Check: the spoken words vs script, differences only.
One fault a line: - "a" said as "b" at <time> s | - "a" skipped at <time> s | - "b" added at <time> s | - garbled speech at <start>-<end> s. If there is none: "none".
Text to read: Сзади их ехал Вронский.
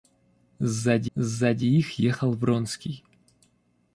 - "сзади" added at 1.1 s